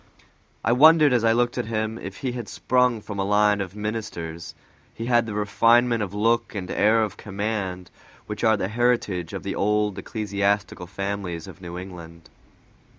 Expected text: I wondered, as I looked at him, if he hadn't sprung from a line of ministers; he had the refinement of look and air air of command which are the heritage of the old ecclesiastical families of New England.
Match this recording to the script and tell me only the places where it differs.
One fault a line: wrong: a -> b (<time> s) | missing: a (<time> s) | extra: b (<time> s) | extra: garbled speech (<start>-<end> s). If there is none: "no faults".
wrong: hadn't -> had (2.3 s)
missing: air (7.0 s)